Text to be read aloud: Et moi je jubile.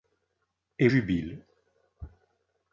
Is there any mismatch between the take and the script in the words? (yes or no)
yes